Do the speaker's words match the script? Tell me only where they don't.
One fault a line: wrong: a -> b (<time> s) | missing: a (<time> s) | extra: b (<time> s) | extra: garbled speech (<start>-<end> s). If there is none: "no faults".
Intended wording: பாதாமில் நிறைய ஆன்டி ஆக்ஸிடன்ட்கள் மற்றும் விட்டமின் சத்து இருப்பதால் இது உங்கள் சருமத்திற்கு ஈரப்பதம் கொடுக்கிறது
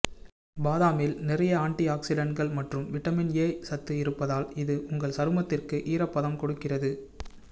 extra: ஏ (3.4 s)